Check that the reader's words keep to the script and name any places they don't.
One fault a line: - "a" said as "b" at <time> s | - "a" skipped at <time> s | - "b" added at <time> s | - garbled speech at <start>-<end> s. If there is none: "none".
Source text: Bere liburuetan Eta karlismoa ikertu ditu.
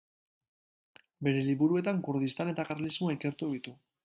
- "Kurdistan" added at 2.1 s